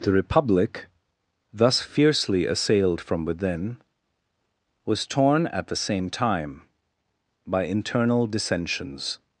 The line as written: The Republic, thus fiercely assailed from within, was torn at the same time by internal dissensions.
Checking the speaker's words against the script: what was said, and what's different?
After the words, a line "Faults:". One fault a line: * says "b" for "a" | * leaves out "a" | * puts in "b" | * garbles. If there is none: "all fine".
The Republic, thus fiercely assailed from within, was torn at the same time by internal dissensions.
Faults:
all fine